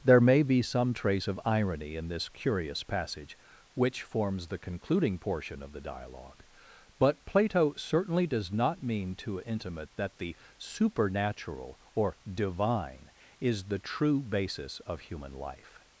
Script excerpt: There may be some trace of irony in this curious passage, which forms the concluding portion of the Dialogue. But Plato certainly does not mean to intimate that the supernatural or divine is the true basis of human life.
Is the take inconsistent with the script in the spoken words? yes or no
no